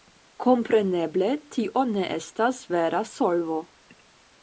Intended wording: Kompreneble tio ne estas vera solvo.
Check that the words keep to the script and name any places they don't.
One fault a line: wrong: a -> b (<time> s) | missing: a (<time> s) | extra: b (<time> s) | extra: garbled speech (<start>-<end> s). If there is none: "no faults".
no faults